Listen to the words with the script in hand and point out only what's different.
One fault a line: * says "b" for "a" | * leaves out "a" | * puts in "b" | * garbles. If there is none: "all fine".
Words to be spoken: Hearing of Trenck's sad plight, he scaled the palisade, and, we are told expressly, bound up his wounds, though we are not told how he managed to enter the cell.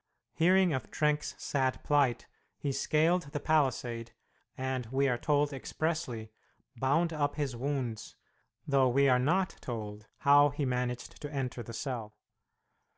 all fine